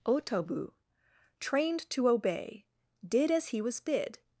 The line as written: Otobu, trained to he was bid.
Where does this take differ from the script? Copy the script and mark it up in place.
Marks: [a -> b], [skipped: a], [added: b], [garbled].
Otobu, trained to [added: obey did as] he was bid.